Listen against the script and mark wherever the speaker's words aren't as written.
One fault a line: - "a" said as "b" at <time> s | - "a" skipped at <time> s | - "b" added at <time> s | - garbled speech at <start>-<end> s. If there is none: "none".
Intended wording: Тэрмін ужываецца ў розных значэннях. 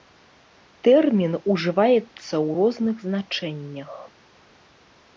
none